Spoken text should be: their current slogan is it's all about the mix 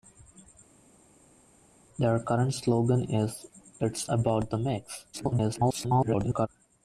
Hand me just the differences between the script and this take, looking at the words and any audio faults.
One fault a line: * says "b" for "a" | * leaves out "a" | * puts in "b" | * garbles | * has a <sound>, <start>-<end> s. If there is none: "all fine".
* leaves out "all"
* garbles